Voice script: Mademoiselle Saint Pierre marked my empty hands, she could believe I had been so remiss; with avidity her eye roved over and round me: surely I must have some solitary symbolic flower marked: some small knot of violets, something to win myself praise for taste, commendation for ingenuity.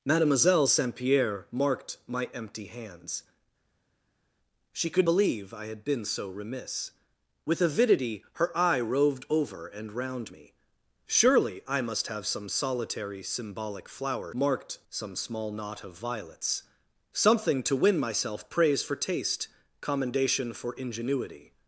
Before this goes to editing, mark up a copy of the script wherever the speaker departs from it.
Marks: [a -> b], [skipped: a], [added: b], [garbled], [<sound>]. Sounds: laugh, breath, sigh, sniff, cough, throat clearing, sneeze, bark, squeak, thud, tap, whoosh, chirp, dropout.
Mademoiselle Saint Pierre marked my empty hands, she could believe I had been so remiss; with avidity her eye roved over and round me: surely I must have some solitary symbolic flower marked: some small knot of violets, something to win myself praise for taste, commendation for ingenuity.